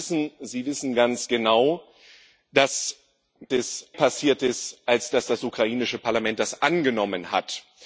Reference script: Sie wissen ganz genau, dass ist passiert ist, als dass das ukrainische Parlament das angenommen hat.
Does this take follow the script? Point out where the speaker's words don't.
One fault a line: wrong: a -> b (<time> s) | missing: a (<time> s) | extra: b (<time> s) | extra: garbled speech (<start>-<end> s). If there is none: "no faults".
no faults